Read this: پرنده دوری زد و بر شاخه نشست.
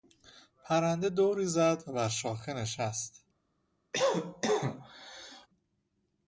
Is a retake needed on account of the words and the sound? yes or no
yes